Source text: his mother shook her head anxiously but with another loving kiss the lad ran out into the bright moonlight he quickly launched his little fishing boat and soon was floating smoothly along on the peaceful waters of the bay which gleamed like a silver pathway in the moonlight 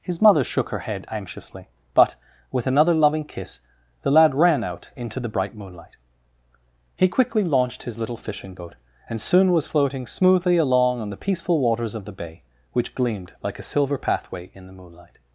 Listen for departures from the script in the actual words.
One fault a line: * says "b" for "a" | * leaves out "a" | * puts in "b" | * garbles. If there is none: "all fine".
all fine